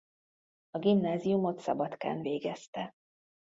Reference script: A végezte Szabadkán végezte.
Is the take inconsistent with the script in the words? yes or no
yes